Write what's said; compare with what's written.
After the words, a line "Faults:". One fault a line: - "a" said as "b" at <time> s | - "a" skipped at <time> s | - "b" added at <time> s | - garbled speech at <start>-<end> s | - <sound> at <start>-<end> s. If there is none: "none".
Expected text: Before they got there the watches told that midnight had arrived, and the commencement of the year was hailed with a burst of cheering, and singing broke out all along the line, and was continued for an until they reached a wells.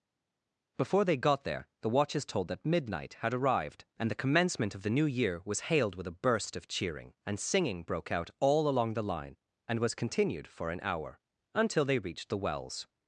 Before they got there the watches told that midnight had arrived, and the commencement of the new year was hailed with a burst of cheering, and singing broke out all along the line, and was continued for an hour, until they reached the wells.
Faults:
- "new" added at 4.9 s
- "hour" added at 10.8 s
- "a" said as "the" at 12.3 s